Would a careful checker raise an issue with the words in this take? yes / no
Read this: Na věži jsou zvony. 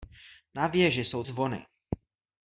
no